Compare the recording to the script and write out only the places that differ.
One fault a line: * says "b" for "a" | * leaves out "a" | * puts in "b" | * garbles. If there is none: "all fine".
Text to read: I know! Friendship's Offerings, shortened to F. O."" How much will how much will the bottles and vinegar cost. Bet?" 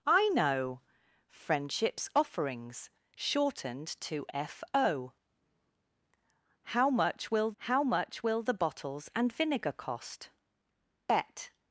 all fine